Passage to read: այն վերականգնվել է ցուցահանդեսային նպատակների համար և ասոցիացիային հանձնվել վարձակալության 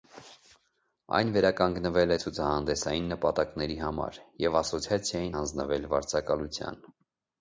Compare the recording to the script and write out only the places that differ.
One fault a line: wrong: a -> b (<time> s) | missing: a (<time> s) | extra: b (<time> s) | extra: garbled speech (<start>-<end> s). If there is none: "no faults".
no faults